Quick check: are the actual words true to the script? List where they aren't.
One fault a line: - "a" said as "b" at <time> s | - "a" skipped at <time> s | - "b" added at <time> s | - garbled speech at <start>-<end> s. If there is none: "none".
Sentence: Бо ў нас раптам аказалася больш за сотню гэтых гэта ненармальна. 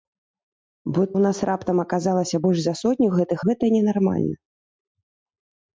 none